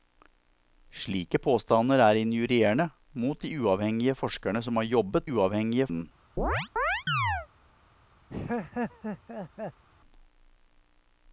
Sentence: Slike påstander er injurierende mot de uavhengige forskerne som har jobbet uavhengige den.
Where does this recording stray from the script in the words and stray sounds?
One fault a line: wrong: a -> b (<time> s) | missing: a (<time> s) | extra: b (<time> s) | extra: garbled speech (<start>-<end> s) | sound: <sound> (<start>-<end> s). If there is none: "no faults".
sound: chirp (6.4-7.5 s)
sound: laugh (8.3-9.8 s)